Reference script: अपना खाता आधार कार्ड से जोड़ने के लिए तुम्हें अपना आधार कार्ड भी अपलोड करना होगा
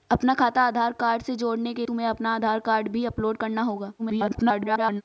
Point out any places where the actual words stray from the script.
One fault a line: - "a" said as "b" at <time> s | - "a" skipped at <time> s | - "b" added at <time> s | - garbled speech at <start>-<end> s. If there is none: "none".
- "लिए" skipped at 1.9 s
- garbled speech at 4.0-5.0 s